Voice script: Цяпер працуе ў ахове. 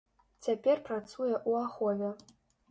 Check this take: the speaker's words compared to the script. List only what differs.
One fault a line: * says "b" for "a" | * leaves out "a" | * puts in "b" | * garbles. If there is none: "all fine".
all fine